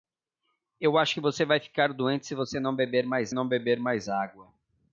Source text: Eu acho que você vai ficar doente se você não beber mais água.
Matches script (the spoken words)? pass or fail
fail